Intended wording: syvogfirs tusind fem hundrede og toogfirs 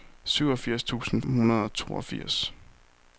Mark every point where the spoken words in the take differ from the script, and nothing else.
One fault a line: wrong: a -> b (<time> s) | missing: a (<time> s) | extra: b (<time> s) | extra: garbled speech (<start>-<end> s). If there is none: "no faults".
missing: fem (1.2 s)